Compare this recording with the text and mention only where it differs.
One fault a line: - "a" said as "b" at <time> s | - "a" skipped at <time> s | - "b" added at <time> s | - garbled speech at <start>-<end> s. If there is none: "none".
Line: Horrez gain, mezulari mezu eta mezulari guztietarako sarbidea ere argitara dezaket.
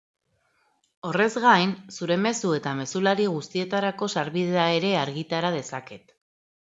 - "mezulari" said as "zure" at 2.0 s